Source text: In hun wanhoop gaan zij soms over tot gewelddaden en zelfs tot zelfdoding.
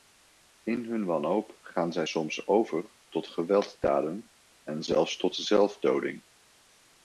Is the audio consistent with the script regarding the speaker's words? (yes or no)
yes